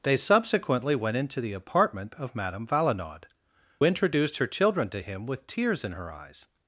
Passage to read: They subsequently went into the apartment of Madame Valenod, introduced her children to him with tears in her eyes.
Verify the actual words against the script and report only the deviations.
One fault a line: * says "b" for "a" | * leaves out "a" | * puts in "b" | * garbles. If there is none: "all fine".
all fine